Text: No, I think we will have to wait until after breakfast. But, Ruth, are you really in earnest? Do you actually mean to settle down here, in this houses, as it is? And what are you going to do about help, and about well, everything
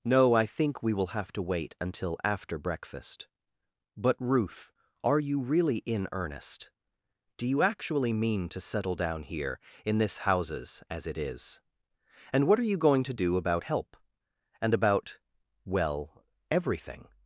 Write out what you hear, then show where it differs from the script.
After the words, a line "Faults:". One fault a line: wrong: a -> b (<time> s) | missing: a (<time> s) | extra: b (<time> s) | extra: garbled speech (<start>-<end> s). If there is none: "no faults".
No, I think we will have to wait until after breakfast. But, Ruth, are you really in earnest? Do you actually mean to settle down here, in this houses, as it is? And what are you going to do about help, and about well, everything
Faults:
no faults